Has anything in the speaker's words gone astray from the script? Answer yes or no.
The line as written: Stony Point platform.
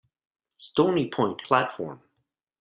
no